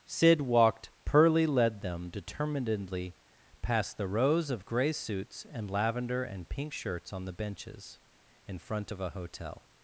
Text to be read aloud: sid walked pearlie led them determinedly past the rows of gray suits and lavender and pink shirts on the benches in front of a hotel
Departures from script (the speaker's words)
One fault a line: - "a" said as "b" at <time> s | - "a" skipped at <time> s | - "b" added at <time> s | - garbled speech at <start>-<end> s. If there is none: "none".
none